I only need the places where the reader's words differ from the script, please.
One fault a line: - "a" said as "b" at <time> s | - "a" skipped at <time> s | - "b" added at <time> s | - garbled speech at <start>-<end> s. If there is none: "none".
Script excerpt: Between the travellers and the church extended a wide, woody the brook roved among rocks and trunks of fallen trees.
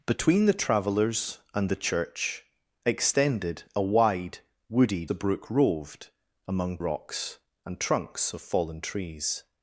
none